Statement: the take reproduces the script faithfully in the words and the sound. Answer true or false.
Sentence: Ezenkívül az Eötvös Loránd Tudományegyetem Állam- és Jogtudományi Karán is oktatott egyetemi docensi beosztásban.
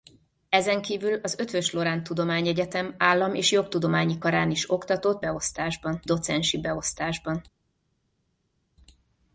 false